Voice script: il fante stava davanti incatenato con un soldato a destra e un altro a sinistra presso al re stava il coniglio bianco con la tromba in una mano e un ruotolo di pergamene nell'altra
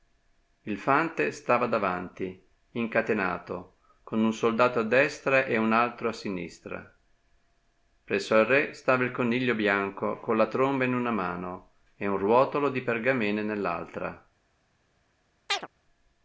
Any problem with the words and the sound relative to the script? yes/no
yes